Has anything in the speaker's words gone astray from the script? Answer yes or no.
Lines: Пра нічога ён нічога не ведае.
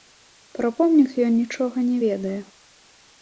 yes